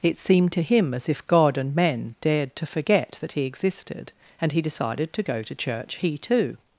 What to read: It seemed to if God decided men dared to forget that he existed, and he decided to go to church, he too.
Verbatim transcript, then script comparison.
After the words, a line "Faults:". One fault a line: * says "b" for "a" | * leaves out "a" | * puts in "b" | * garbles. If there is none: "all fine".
It seemed to him as if God and men dared to forget that he existed, and he decided to go to church, he too.
Faults:
* puts in "him as"
* says "and" for "decided"